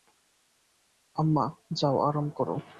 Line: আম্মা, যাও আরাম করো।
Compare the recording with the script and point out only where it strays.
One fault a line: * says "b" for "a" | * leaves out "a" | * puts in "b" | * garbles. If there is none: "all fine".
all fine